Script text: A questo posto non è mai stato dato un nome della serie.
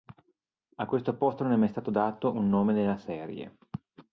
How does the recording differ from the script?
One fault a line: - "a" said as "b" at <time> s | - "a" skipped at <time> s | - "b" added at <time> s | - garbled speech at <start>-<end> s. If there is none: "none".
- "della" said as "nella" at 2.7 s